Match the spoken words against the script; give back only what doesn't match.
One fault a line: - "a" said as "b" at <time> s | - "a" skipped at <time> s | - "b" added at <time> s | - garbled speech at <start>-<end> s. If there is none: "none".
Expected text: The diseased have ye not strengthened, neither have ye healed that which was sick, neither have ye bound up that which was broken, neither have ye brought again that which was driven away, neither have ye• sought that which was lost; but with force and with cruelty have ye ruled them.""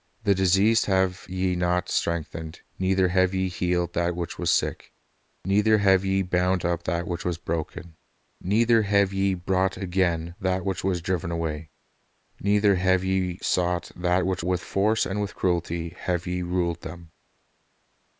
- "was lost but" skipped at 14.4 s